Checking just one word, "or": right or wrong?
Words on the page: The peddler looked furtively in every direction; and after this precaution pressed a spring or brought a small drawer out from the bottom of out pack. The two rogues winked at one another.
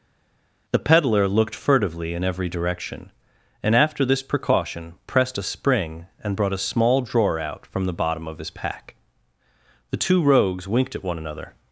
wrong